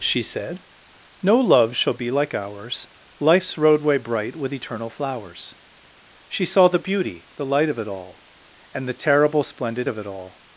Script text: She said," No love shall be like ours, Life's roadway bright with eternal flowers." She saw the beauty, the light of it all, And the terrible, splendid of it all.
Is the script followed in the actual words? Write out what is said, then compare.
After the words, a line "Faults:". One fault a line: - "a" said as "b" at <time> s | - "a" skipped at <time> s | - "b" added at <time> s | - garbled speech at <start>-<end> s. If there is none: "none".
She said," No love shall be like ours, Life's roadway bright with eternal flowers." She saw the beauty, the light of it all, And the terrible, splendid of it all.
Faults:
none